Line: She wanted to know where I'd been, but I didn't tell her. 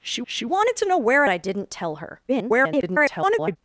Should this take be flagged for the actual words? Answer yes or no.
yes